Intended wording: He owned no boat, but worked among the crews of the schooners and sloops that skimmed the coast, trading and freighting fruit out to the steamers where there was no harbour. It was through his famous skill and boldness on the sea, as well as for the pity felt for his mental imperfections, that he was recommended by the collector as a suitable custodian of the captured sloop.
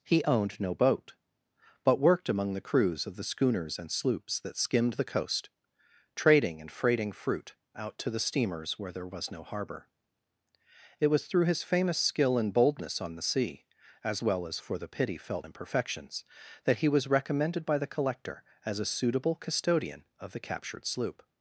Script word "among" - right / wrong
right